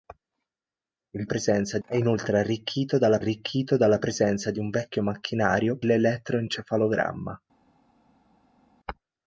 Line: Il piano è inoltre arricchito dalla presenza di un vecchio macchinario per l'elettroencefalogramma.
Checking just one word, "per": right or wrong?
wrong